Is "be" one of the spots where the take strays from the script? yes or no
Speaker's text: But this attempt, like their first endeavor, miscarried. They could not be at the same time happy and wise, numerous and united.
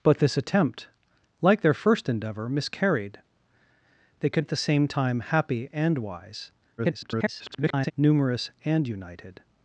yes